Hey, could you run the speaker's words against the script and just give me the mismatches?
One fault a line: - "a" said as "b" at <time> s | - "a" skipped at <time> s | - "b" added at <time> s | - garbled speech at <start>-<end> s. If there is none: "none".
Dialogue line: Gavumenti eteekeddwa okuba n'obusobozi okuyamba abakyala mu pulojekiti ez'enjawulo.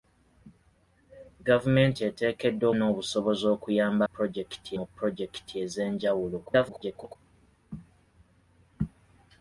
- "okuba" skipped at 2.7 s
- "abakyala" said as "pulojekiti" at 4.1 s
- garbled speech at 6.4-7.2 s